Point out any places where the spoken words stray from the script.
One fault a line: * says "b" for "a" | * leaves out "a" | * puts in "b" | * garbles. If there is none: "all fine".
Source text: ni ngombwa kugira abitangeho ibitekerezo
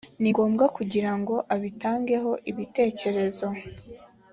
* puts in "ngo"